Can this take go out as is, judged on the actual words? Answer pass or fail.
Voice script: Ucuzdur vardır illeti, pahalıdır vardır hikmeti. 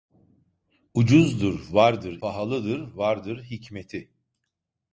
fail